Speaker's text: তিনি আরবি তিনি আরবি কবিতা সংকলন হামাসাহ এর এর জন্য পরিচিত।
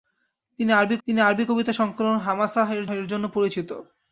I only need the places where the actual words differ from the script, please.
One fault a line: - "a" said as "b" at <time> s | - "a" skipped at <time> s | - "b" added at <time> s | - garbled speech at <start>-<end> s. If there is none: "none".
none